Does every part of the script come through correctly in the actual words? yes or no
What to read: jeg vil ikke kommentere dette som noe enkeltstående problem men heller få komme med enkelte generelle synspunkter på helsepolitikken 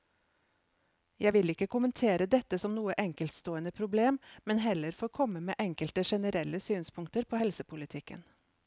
yes